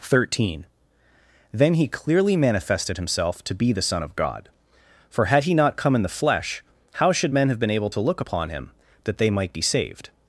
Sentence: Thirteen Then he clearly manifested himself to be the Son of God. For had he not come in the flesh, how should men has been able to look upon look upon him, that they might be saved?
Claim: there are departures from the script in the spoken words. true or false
true